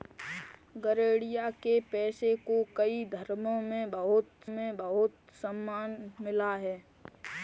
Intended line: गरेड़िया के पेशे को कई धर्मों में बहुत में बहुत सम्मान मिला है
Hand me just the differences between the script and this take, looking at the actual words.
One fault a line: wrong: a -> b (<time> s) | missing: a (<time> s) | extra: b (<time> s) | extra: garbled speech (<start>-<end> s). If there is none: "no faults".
no faults